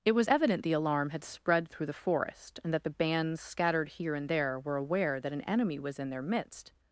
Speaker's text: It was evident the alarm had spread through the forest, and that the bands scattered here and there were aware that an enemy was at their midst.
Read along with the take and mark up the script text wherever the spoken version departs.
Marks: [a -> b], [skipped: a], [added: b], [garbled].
It was evident the alarm had spread through the forest, and that the bands scattered here and there were aware that an enemy was [at -> in] their midst.